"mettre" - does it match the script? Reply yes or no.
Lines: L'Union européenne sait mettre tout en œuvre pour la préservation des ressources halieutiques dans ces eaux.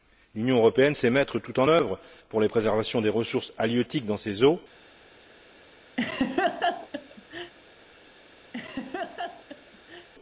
yes